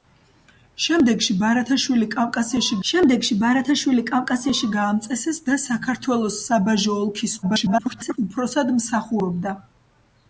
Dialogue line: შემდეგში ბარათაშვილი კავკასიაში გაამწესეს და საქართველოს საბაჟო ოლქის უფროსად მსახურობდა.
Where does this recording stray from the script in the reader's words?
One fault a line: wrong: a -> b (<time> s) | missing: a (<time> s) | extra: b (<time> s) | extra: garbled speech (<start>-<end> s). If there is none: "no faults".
extra: შემდეგში ბარათაშვილი კავკასიაში (2.9 s)
extra: garbled speech (7.4-8.2 s)